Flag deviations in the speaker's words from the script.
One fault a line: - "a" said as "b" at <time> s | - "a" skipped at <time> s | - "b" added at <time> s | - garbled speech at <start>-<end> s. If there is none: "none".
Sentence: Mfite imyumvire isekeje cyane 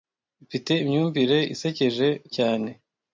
none